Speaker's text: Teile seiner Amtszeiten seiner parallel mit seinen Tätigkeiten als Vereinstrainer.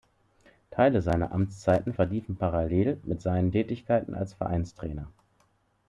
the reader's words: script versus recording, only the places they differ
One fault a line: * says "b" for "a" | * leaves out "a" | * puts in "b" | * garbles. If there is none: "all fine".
* says "verliefen" for "seiner"